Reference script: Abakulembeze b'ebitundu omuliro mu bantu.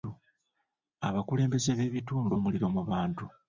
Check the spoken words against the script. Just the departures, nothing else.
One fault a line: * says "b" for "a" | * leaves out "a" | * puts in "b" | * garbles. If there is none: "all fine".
all fine